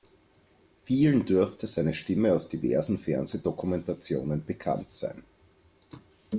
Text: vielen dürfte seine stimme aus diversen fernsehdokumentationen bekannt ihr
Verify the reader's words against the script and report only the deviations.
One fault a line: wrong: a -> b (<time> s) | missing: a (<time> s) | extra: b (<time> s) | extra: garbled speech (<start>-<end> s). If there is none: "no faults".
wrong: ihr -> sein (4.9 s)